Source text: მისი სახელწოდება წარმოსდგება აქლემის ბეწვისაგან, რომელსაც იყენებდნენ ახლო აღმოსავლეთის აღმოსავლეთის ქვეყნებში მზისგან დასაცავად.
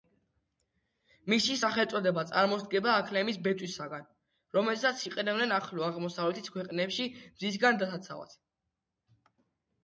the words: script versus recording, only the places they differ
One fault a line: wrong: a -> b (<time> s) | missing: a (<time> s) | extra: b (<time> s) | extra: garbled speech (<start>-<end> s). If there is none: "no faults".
missing: აღმოსავლეთის (6.5 s)